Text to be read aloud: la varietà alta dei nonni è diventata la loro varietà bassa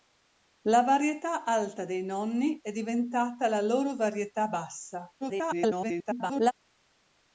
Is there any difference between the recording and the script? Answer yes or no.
yes